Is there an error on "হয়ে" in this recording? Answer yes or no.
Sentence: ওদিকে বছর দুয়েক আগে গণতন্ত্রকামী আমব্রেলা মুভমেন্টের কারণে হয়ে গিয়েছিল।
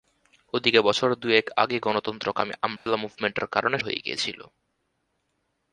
no